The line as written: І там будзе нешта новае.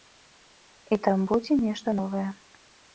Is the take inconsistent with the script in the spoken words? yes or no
no